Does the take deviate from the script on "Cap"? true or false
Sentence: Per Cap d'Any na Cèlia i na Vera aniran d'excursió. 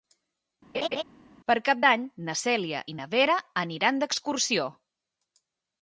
false